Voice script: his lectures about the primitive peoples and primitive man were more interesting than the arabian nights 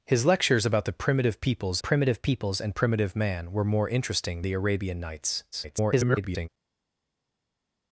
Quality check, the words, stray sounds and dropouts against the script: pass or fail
fail